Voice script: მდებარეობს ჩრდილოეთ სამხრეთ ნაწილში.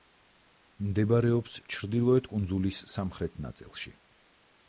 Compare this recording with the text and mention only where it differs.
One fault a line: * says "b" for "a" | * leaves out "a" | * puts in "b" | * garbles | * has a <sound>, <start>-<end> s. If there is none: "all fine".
* puts in "კუნძულის"